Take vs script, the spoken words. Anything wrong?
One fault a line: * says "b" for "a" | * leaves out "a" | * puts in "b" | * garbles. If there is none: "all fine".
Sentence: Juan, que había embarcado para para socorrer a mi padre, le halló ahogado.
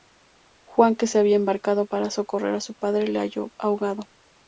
* puts in "se"
* leaves out "para"
* says "su" for "mi"